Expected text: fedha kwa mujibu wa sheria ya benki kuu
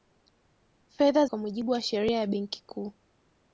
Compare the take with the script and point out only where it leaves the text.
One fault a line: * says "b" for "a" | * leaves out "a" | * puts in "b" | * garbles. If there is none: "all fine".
all fine